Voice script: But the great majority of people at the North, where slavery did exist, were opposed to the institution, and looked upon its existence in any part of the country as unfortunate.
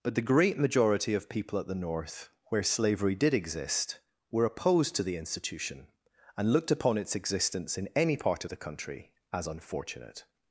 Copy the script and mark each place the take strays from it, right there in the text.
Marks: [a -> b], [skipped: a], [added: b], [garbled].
But the great majority of people at the North, where slavery did exist, were opposed to the institution, and looked upon its existence in any part of the country as unfortunate.